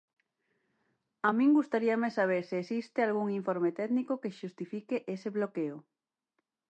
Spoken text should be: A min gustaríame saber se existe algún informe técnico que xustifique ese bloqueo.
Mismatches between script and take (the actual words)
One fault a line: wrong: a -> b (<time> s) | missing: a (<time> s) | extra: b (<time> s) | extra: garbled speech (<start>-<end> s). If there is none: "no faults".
no faults